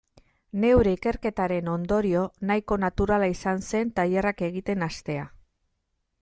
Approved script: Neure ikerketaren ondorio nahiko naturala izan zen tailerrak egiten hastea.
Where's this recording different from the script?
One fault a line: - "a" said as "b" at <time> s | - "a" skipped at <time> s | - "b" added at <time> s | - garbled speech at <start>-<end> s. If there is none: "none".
none